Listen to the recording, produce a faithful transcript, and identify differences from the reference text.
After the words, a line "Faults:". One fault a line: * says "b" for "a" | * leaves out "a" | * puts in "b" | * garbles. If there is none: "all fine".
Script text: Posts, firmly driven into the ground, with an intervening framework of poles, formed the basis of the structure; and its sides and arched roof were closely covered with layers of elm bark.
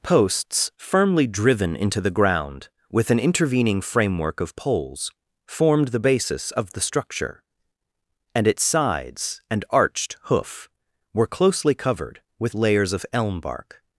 Posts, firmly driven into the ground, with an intervening framework of poles, formed the basis of the structure; and its sides and arched hoof were closely covered with layers of elm bark.
Faults:
* says "hoof" for "roof"